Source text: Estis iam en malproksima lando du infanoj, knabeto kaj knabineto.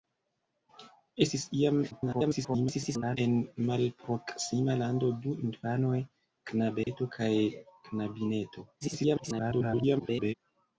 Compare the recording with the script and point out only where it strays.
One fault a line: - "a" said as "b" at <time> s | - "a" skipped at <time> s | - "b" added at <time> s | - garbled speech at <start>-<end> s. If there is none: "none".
- garbled speech at 1.9-3.2 s
- garbled speech at 8.8-10.3 s